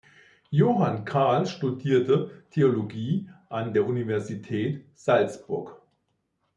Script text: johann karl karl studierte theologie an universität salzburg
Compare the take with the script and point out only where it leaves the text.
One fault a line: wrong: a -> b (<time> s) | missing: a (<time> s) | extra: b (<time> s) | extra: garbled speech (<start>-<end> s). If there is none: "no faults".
missing: karl (1.4 s)
extra: der (3.7 s)